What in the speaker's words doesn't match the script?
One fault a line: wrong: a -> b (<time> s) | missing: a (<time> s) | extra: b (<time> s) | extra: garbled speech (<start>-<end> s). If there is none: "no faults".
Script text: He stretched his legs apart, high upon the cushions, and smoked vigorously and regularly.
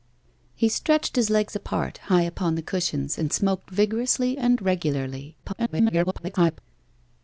extra: garbled speech (5.4-6.6 s)